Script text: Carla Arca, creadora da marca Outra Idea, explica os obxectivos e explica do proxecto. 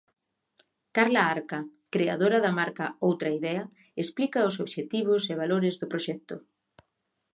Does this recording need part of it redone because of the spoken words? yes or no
yes